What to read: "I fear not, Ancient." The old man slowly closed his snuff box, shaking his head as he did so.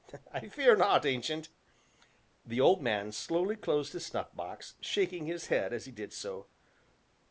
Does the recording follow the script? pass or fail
pass